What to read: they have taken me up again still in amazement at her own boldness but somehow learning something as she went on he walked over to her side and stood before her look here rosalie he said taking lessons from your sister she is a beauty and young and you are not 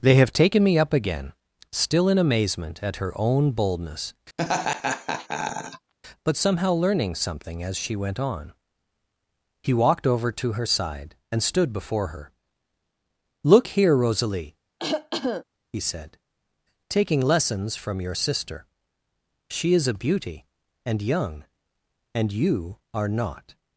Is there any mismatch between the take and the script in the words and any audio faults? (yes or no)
yes